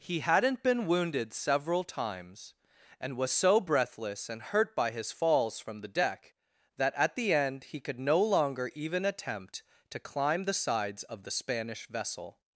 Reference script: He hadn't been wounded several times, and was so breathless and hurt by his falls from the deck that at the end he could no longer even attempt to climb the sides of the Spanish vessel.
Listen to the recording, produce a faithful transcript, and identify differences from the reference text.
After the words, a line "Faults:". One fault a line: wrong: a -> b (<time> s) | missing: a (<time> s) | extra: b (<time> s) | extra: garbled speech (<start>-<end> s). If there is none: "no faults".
He hadn't been wounded several times, and was so breathless and hurt by his falls from the deck that at the end he could no longer even attempt to climb the sides of the Spanish vessel.
Faults:
no faults